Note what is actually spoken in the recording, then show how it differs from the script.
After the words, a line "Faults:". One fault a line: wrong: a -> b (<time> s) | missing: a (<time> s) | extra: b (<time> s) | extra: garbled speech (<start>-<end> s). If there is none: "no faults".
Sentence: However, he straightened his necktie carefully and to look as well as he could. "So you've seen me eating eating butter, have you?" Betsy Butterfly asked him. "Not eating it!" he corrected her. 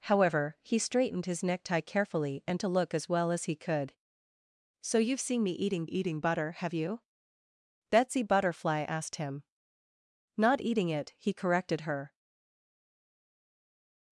However, he straightened his necktie carefully and to look as well as he could. "So you've seen me eating eating butter, have you?" Betsy Butterfly asked him. "Not eating it!" he corrected her.
Faults:
no faults